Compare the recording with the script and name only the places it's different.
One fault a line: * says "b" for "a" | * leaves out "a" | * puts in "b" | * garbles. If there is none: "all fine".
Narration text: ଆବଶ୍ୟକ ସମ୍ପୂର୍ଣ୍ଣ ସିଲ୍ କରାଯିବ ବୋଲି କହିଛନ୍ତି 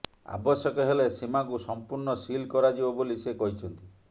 * puts in "ହେଲେ ସୀମାକୁ"
* puts in "ସେ"